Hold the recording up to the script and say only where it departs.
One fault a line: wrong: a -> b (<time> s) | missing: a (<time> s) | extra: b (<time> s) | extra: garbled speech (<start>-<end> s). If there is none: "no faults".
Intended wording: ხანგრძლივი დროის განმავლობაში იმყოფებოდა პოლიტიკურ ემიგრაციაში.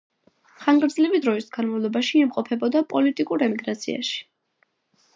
no faults